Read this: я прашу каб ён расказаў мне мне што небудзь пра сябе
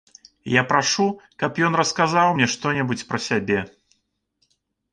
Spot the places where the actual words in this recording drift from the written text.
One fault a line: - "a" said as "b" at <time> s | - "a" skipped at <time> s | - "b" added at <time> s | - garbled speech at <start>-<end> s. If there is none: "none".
- "мне" skipped at 2.5 s